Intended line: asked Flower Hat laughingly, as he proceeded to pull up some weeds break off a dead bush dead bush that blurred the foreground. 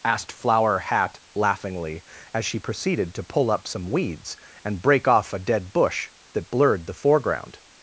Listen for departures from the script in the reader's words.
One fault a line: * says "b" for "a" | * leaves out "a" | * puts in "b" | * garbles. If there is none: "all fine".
* says "she" for "he"
* puts in "and"
* leaves out "dead bush"